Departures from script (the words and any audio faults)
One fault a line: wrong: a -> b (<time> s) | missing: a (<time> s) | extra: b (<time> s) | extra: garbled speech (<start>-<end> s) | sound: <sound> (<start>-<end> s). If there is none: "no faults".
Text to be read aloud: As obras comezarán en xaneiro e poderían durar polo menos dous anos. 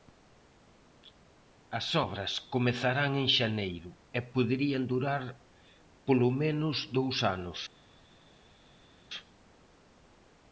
no faults